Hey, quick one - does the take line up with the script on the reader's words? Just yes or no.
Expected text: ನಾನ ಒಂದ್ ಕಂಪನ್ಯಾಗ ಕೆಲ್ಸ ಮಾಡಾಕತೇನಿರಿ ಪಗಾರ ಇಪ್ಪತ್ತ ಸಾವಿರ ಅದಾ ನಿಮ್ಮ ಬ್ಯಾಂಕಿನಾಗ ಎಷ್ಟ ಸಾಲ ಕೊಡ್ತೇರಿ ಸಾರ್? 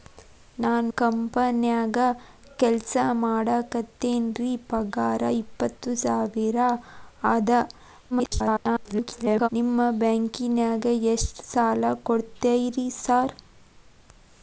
no